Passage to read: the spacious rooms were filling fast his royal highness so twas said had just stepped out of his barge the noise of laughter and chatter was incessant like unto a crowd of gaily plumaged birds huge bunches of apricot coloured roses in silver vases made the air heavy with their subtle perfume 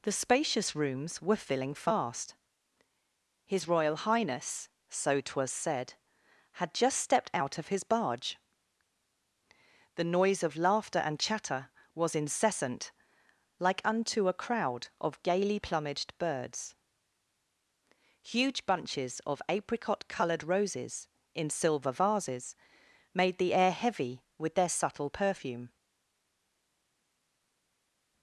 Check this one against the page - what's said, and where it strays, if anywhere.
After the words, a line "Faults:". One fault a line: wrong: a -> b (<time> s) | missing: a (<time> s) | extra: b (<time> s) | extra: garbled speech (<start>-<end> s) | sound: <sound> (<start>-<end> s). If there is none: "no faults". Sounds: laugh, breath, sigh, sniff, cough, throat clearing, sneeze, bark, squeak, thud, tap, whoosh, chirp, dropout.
the spacious rooms were filling fast his royal highness so twas said had just stepped out of his barge the noise of laughter and chatter was incessant like unto a crowd of gaily plumaged birds huge bunches of apricot coloured roses in silver vases made the air heavy with their subtle perfume
Faults:
no faults